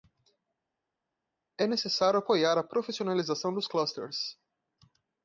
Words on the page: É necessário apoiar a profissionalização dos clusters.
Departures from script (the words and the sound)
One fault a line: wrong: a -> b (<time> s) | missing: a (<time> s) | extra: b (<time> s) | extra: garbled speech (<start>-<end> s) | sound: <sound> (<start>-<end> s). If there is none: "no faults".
no faults